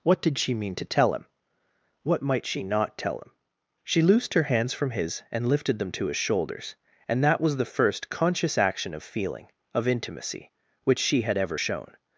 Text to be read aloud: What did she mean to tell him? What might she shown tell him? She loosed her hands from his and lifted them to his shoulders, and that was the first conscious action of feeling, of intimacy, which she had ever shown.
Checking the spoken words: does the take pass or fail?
fail